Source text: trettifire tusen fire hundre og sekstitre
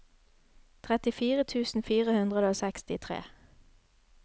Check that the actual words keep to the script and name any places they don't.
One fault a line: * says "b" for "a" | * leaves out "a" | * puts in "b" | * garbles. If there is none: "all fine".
all fine